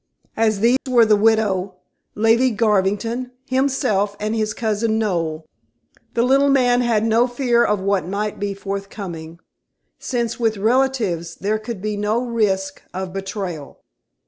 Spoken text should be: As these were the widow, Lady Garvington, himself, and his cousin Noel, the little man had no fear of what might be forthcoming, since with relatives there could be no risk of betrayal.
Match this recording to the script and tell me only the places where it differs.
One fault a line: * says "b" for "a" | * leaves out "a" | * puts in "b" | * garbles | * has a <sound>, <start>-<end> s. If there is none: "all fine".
* has a dropout, 0.8-0.9 s